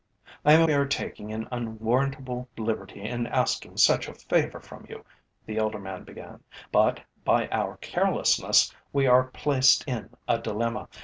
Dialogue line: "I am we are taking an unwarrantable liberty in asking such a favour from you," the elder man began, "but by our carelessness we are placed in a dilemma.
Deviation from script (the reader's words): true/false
false